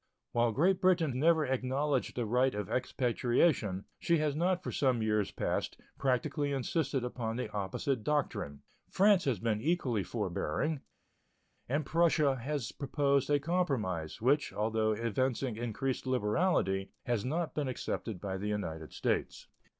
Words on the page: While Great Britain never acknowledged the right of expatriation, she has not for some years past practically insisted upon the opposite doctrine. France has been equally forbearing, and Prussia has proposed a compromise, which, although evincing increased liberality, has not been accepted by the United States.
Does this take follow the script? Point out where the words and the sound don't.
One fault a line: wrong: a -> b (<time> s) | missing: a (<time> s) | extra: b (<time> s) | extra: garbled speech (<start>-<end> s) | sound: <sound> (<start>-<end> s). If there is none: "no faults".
no faults